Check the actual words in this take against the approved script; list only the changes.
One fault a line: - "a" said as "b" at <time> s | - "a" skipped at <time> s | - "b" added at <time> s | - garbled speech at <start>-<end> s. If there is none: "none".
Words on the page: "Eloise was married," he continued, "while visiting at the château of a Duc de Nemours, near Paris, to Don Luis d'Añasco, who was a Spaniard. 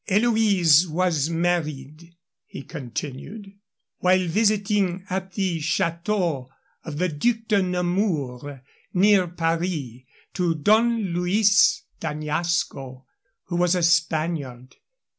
- "a" said as "the" at 7.0 s